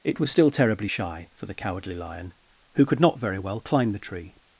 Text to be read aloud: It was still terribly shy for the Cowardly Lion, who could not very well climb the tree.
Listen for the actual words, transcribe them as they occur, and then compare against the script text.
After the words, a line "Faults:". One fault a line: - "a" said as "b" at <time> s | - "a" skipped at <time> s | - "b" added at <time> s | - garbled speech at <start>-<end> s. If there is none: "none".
It was still terribly shy for the Cowardly Lion, who could not very well climb the tree.
Faults:
none